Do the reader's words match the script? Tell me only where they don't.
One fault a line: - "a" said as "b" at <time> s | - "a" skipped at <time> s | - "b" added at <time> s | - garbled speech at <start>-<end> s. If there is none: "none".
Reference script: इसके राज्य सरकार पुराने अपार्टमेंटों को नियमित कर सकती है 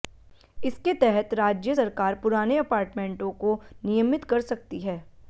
- "तहत" added at 0.9 s